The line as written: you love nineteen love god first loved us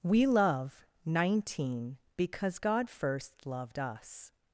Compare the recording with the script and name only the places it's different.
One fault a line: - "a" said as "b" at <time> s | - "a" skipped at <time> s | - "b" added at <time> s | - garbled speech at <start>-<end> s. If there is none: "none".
- "you" said as "we" at 0.0 s
- "love" said as "because" at 2.2 s